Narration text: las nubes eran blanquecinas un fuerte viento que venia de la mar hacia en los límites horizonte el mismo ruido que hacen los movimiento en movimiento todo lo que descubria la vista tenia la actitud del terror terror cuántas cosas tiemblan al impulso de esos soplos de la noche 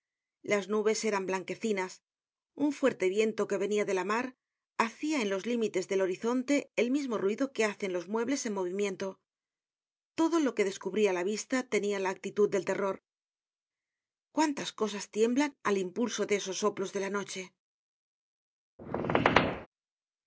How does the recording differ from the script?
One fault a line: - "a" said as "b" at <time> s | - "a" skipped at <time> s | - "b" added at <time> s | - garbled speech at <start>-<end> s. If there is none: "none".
- "del" added at 5.9 s
- "movimiento" said as "muebles" at 8.1 s
- "terror" skipped at 13.0 s